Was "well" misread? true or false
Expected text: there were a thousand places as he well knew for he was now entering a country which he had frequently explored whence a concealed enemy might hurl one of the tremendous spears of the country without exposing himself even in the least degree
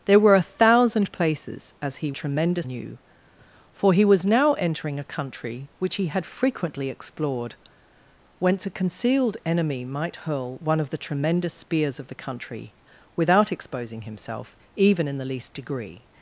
true